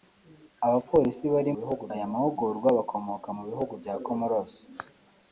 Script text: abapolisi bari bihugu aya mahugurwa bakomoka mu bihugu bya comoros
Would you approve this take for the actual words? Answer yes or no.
yes